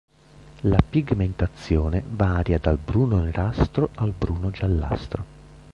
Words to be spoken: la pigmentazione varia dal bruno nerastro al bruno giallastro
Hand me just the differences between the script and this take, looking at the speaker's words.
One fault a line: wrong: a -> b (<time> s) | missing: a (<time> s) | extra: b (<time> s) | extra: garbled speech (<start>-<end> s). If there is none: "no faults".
no faults